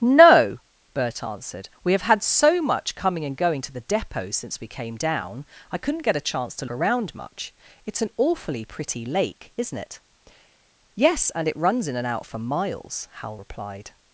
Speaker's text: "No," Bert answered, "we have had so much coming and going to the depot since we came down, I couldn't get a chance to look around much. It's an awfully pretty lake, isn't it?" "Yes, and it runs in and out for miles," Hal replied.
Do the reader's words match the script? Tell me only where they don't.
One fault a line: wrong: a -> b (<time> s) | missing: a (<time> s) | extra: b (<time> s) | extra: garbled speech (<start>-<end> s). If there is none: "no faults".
missing: look (6.7 s)